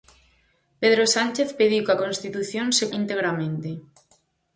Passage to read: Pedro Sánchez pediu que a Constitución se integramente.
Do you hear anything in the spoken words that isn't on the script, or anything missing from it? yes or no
no